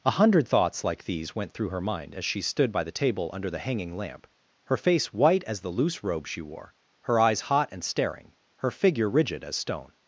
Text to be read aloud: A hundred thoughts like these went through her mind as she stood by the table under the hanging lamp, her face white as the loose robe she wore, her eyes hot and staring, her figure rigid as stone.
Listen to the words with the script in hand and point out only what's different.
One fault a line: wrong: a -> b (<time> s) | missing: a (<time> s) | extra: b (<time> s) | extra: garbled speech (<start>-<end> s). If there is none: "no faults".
no faults